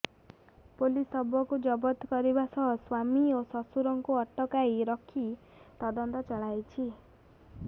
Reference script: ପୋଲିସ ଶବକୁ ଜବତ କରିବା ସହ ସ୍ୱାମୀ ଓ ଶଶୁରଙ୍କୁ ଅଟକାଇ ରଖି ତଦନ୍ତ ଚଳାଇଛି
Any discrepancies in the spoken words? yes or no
no